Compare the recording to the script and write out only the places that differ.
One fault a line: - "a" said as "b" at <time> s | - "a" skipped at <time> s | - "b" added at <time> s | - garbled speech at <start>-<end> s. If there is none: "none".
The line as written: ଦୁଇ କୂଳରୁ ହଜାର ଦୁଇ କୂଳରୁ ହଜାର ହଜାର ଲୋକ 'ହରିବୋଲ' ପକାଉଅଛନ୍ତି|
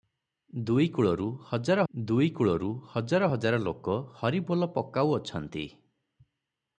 none